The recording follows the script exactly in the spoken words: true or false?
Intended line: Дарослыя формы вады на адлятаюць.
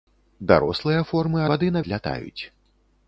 true